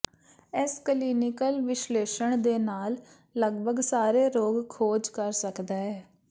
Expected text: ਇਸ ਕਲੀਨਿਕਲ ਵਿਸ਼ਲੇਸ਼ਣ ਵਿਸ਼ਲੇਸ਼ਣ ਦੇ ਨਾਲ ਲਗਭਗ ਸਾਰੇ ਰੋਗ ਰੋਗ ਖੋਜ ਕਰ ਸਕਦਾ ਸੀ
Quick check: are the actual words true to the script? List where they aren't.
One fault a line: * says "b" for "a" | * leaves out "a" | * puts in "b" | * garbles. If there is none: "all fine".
* leaves out "ਵਿਸ਼ਲੇਸ਼ਣ"
* leaves out "ਰੋਗ"
* says "ਹੈ" for "ਸੀ"